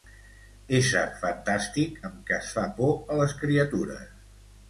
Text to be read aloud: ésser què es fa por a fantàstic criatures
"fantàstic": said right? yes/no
no